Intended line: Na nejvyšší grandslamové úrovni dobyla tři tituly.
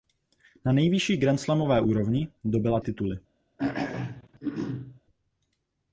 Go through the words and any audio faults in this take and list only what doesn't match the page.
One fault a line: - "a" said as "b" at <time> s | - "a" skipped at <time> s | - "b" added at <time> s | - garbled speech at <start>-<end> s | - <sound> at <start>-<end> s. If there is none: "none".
- "tři" skipped at 2.8 s
- throat clearing at 3.6-5.0 s